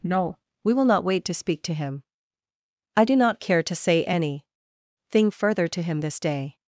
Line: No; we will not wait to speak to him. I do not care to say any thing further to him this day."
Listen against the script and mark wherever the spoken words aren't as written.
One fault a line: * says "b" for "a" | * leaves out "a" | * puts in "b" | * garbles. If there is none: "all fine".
all fine